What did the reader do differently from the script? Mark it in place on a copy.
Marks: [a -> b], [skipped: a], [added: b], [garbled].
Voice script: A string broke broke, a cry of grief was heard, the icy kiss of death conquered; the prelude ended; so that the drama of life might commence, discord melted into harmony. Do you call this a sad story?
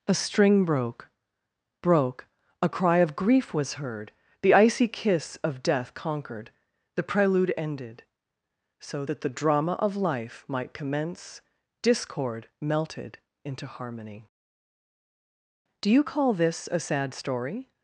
A string broke broke, a cry of grief was heard, the icy kiss of death conquered; the prelude ended; so that the drama of life might commence, discord melted into harmony. Do you call this a sad story?